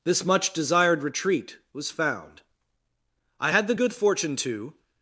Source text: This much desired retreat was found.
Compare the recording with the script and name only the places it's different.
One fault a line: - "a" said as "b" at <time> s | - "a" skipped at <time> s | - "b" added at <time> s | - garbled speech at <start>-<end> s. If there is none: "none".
- "I had the good fortune to" added at 3.4 s